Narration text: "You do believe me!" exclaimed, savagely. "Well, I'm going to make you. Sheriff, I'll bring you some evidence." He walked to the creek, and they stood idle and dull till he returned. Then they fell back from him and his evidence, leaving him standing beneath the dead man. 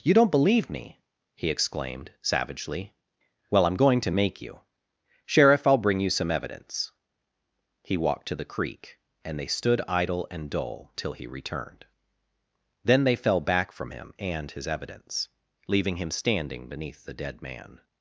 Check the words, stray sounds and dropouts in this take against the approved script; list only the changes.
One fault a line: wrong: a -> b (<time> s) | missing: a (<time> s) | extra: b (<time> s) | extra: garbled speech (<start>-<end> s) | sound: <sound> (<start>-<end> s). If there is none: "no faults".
wrong: do -> don't (0.1 s)
extra: he (1.4 s)